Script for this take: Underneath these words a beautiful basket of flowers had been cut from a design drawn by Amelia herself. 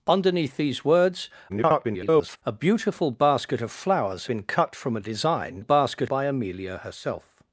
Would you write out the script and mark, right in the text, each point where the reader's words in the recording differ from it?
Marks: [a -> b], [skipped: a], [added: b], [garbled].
Underneath these words [garbled] a beautiful basket of flowers [skipped: had] been cut from a design [drawn -> basket] by Amelia herself.